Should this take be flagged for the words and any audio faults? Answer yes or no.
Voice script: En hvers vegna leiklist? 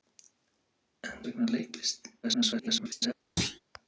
yes